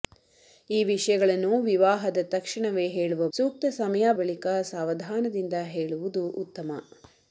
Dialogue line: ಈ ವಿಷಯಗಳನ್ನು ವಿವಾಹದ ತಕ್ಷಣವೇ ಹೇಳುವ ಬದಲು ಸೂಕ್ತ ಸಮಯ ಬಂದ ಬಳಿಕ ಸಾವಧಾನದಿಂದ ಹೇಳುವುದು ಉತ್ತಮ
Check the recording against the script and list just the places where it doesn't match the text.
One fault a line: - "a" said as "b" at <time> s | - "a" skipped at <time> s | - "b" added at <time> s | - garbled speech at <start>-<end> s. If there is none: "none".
- "ಬದಲು" skipped at 3.3 s
- "ಬಂದ" skipped at 4.1 s